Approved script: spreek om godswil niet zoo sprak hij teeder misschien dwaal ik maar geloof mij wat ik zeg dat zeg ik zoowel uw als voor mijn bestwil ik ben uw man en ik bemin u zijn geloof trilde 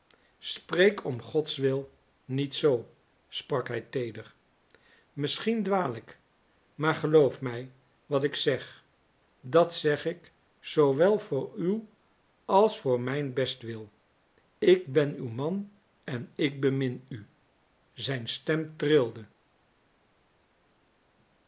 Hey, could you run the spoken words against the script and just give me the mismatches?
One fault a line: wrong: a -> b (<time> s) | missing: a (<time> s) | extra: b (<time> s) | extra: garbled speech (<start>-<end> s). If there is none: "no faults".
extra: voor (11.2 s)
wrong: geloof -> stem (18.3 s)